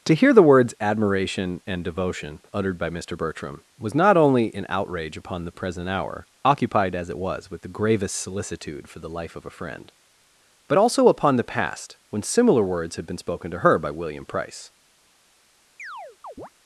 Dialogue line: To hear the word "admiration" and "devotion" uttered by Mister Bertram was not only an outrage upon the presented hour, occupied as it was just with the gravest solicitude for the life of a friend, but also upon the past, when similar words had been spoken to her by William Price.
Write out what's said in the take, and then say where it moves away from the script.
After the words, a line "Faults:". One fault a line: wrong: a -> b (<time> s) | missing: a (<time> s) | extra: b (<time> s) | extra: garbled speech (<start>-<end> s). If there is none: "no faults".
To hear the words "admiration" and "devotion" uttered by Mister Bertram was not only an outrage upon the present hour, occupied as it was with the gravest solicitude for the life of a friend, but also upon the past, when similar words had been spoken to her by William Price.
Faults:
wrong: word -> words (0.4 s)
wrong: presented -> present (5.5 s)
missing: just (7.5 s)